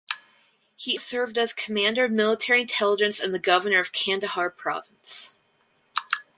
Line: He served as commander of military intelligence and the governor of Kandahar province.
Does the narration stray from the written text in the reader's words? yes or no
no